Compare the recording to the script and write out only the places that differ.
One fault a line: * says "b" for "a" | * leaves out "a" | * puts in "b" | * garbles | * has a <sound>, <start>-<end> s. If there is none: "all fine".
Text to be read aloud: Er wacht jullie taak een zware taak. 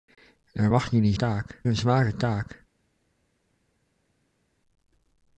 all fine